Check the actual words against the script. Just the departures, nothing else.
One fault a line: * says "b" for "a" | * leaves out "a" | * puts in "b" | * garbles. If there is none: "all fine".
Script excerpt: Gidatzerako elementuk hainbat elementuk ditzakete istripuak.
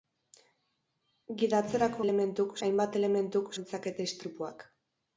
all fine